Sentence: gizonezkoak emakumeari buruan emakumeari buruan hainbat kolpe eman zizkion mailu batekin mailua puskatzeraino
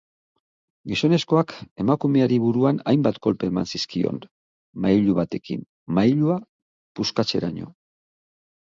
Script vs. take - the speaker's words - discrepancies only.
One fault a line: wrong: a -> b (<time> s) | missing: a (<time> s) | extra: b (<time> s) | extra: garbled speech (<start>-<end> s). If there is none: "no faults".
missing: emakumeari buruan (2.8 s)